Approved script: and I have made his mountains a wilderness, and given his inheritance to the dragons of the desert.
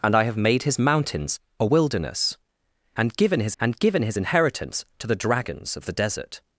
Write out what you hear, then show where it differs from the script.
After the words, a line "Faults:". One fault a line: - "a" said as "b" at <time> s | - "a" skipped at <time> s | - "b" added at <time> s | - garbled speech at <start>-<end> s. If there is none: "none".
and I have made his mountains a wilderness, and given his and given his inheritance to the dragons of the desert.
Faults:
- "and given his" added at 3.6 s